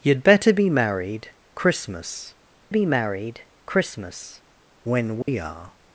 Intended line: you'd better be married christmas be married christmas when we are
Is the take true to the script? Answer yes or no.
yes